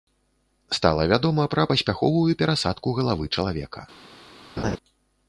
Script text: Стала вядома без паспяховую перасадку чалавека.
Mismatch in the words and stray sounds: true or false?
true